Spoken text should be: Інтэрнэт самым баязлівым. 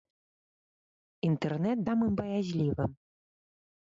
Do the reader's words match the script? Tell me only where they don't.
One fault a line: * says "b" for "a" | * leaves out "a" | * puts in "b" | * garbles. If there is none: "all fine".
all fine